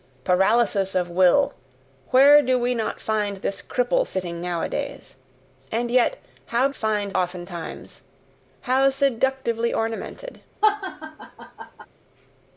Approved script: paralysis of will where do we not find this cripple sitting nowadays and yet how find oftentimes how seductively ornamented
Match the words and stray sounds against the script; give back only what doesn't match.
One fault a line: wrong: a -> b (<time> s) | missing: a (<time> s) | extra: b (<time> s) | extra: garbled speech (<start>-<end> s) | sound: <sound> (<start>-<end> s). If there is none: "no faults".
sound: laugh (10.6-11.9 s)